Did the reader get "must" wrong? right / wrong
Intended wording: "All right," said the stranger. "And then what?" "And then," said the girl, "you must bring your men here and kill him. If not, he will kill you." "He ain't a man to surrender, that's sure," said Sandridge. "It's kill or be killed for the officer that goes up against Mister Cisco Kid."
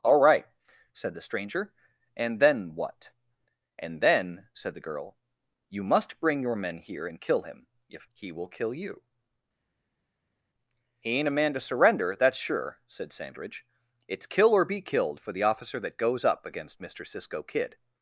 right